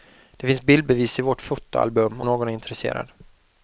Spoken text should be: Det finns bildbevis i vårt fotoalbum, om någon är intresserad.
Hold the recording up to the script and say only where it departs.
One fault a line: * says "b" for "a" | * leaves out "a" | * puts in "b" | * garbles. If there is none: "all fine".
* leaves out "om"